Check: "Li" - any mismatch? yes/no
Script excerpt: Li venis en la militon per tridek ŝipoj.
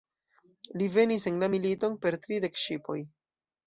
no